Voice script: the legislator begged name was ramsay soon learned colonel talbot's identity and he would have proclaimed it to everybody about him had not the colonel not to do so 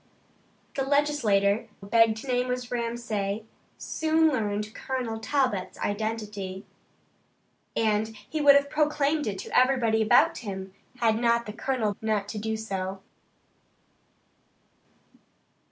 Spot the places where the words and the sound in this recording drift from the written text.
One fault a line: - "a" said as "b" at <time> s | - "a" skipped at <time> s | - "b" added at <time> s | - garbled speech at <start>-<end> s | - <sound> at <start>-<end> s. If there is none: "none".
none